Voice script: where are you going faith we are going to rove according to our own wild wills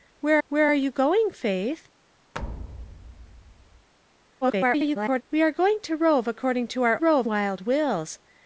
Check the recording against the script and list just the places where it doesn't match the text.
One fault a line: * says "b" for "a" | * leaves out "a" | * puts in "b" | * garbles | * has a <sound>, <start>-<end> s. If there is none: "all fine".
* puts in "where"
* has a thud, 2.3-3.9 s
* garbles
* says "rove" for "own"